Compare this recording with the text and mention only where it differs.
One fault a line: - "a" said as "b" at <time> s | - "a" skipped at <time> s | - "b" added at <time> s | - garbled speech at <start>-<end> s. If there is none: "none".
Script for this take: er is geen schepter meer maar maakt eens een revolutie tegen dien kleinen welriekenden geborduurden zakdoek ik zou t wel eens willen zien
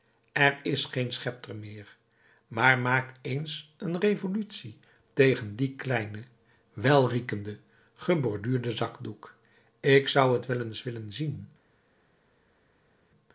none